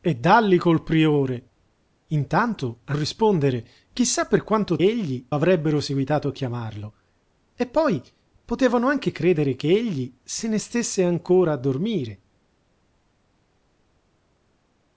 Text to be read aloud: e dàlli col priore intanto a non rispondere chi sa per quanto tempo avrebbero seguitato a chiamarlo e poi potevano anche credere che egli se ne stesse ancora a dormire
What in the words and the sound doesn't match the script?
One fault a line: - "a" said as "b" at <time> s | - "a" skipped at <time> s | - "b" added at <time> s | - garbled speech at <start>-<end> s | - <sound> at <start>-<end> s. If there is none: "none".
- "non" skipped at 3.0 s
- "tempo" said as "egli" at 4.8 s